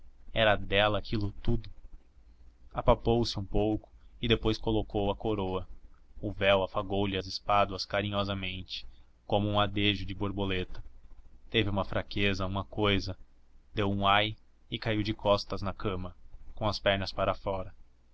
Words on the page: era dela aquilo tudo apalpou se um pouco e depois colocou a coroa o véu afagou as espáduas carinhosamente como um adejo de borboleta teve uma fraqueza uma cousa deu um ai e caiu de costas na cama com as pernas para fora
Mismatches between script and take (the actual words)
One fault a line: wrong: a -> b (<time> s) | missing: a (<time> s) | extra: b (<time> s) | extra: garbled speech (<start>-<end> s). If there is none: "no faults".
extra: lhe (7.0 s)